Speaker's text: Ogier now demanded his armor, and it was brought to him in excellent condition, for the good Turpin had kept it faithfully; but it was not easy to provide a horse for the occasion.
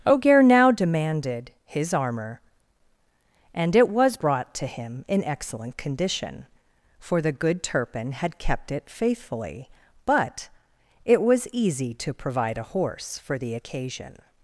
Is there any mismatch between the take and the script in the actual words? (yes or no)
yes